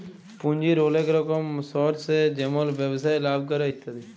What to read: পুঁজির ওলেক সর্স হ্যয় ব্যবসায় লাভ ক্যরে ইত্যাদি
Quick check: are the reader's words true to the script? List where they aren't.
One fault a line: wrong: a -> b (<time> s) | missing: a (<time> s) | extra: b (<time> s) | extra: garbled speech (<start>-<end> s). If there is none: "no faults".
extra: রকম (1.1 s)
extra: যেমল (2.4 s)